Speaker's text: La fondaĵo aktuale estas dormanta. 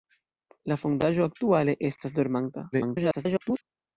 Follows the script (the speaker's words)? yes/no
no